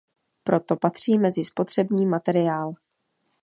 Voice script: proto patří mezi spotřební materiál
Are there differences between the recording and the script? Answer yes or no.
no